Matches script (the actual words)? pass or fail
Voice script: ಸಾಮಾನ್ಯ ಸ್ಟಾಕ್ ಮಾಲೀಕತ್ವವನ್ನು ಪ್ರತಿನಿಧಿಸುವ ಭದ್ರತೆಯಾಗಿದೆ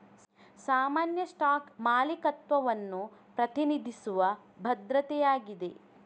pass